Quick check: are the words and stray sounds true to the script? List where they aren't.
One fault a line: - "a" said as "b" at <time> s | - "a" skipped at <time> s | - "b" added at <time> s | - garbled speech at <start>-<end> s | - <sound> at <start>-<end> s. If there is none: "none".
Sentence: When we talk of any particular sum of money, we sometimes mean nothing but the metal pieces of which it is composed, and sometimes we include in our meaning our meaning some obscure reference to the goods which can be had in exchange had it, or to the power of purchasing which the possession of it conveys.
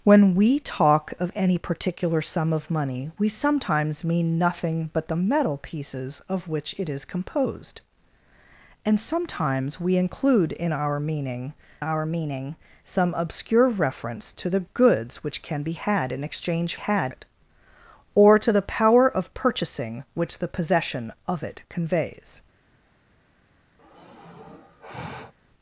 - sigh at 23.8-25.3 s